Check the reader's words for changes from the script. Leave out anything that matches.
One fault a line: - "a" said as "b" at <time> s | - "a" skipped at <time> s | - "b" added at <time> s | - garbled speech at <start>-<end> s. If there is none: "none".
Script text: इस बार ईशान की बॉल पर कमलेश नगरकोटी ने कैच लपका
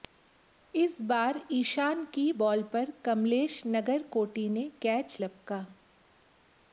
none